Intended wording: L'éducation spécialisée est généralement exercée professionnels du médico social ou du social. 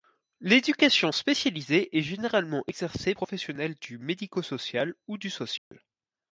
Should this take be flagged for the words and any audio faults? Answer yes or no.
yes